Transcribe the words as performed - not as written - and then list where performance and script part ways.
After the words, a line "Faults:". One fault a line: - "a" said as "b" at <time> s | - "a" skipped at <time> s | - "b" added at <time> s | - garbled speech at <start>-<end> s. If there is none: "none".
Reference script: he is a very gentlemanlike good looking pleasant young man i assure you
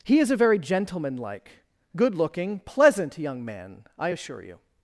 he is a very gentlemanlike good looking pleasant young man i assure you
Faults:
none